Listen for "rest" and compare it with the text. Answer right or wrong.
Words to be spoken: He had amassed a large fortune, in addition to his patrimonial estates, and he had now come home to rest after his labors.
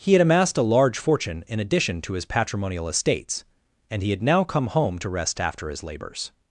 right